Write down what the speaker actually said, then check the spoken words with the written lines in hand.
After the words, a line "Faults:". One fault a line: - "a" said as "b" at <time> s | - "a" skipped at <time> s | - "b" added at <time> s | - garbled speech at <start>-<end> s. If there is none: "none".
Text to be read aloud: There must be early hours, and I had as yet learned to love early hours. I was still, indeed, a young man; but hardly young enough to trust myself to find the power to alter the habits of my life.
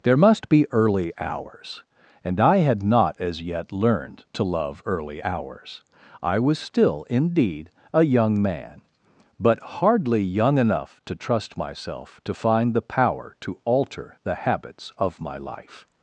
There must be early hours, and I had not as yet learned to love early hours. I was still, indeed, a young man; but hardly young enough to trust myself to find the power to alter the habits of my life.
Faults:
- "not" added at 2.8 s